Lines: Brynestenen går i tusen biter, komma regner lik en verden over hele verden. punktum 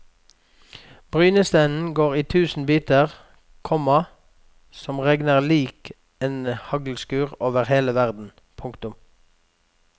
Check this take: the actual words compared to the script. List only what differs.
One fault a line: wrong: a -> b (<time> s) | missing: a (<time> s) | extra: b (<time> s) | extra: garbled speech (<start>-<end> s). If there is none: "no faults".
extra: som (4.7 s)
wrong: verden -> haglskur (6.5 s)